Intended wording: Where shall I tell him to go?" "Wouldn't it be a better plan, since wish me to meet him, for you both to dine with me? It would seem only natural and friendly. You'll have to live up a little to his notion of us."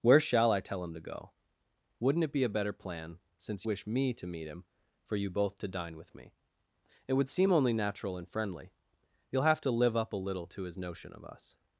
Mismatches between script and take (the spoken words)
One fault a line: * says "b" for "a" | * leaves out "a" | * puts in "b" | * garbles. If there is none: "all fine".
all fine